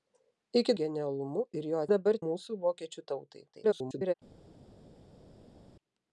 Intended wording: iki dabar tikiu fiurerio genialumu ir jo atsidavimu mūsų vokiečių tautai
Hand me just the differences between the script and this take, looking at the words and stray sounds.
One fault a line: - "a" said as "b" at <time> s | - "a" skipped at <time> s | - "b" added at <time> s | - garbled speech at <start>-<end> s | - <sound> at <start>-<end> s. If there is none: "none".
- "dabar tikiu fiurerio" skipped at 0.7 s
- "atsidavimu" said as "dabar" at 1.9 s
- garbled speech at 3.5-4.1 s